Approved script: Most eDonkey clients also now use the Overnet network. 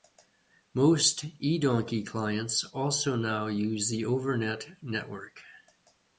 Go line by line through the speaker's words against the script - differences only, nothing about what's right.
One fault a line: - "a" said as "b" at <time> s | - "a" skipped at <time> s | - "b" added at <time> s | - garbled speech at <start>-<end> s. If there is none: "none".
none